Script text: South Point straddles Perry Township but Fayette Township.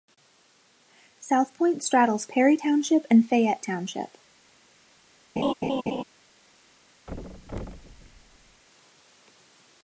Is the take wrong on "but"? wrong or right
wrong